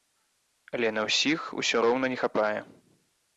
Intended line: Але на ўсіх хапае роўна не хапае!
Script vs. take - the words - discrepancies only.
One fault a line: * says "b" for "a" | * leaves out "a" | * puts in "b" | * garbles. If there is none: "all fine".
* says "усё" for "хапае"